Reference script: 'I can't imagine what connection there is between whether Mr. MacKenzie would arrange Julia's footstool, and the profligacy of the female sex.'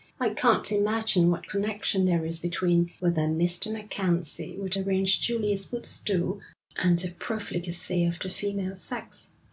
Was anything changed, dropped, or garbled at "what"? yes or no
no